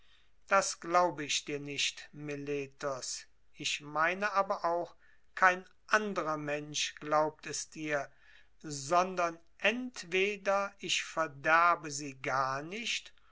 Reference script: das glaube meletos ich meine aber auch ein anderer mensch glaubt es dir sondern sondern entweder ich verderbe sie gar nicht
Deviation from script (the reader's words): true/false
true